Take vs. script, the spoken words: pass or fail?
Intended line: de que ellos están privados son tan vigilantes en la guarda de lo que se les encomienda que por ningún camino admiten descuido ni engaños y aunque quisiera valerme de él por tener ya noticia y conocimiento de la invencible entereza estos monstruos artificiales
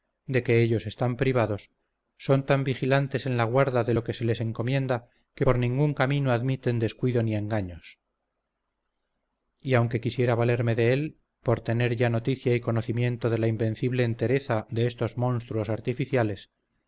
fail